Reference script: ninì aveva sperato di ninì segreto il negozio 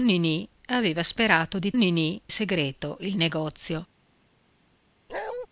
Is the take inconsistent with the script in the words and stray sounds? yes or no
yes